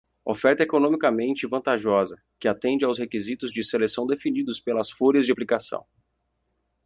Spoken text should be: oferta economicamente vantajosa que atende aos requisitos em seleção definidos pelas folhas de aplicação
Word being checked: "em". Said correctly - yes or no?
no